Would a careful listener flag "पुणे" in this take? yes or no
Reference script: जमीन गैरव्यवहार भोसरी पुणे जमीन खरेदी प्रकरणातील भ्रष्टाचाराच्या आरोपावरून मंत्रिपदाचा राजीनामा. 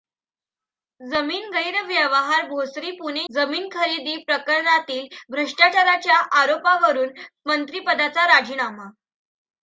no